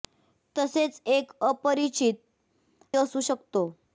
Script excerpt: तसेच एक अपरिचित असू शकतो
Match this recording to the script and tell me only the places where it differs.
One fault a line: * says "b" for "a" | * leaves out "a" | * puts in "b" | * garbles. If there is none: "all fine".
all fine